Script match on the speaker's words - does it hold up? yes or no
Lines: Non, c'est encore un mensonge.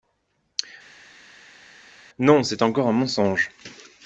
yes